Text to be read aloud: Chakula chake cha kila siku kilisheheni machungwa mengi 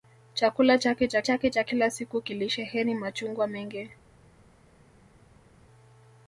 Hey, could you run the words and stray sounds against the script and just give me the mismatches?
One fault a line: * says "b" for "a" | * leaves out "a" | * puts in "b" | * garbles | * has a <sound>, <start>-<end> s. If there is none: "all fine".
* puts in "chake cha"